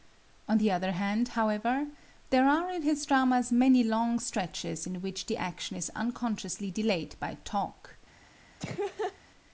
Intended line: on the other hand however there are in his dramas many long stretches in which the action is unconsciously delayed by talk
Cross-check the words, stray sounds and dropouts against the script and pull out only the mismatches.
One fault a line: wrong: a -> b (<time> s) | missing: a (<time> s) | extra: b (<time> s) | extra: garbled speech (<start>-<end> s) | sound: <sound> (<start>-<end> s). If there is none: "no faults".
sound: laugh (8.6-9.2 s)